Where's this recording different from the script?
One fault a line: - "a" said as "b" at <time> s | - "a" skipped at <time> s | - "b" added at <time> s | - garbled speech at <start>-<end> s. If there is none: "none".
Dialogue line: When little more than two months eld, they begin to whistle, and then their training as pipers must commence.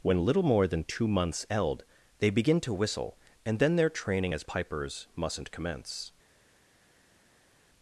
- "must" said as "mustn't" at 5.2 s